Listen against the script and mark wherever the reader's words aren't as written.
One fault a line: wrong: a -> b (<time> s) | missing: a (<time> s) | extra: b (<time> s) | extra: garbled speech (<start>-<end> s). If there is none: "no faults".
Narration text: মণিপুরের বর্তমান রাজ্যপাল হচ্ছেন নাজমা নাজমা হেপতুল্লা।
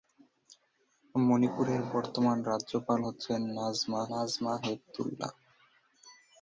no faults